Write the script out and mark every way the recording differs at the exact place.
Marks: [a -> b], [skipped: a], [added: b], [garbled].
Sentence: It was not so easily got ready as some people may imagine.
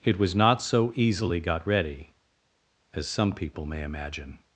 It was not so easily got ready as some people may imagine.